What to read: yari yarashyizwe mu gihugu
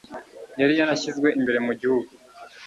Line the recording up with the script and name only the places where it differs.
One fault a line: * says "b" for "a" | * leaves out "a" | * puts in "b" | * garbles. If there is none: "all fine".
* puts in "imbere"